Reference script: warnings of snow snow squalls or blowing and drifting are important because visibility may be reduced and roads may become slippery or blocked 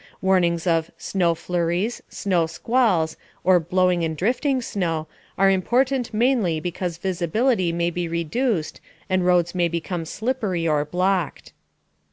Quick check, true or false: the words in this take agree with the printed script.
false